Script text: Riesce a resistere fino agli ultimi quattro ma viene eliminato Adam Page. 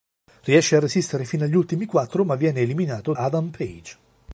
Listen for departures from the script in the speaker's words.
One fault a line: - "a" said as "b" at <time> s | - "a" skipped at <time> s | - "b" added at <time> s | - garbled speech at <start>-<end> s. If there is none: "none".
none